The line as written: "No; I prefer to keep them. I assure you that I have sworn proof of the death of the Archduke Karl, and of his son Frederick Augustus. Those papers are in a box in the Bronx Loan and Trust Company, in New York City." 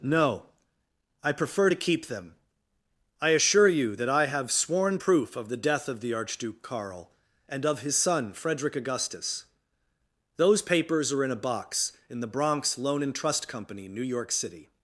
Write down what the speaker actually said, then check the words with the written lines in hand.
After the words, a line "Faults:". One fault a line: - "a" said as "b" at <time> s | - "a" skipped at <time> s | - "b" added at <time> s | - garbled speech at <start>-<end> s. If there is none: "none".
"No; I prefer to keep them. I assure you that I have sworn proof of the death of the Archduke Karl, and of his son Frederick Augustus. Those papers are in a box in the Bronx Loan and Trust Company, New York City."
Faults:
- "in" skipped at 13.9 s